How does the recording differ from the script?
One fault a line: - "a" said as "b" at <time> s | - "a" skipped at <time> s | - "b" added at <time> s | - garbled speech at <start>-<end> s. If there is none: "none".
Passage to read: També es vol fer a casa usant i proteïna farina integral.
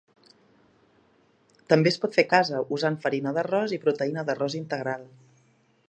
- "vol" said as "pot" at 2.0 s
- "farina d'arròs" added at 3.0 s
- "farina" said as "d'arròs" at 4.3 s